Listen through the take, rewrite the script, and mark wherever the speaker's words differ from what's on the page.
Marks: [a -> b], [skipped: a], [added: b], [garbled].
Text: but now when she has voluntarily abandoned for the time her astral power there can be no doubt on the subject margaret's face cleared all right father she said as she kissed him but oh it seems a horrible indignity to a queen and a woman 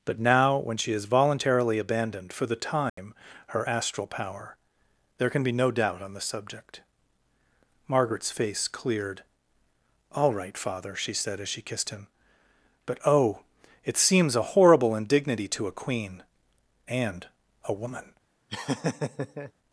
but now when she has voluntarily abandoned for the time her astral power there can be no doubt on the subject margaret's face cleared all right father she said as she kissed him but oh it seems a horrible indignity to a queen and a woman